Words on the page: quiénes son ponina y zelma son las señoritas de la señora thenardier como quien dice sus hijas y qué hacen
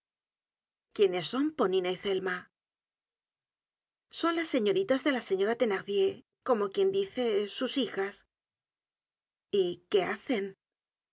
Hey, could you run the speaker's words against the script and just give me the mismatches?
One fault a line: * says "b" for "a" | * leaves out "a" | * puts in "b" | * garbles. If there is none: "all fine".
all fine